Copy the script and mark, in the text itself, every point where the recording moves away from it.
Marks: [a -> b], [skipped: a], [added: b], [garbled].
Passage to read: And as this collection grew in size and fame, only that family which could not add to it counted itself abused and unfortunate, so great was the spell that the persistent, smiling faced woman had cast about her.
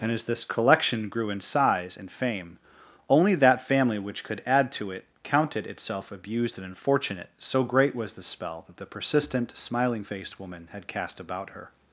And as this collection grew in size and fame, only that family which could [skipped: not] add to it counted itself abused and unfortunate, so great was the spell that the persistent, smiling faced woman had cast about her.